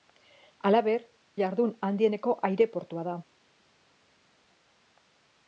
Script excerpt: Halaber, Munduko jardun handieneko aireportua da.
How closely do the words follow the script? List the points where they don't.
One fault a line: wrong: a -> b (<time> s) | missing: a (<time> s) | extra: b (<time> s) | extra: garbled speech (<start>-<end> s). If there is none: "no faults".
missing: Munduko (1.0 s)